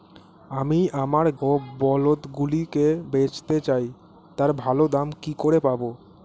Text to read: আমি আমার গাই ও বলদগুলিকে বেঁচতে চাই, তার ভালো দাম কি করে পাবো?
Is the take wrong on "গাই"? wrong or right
wrong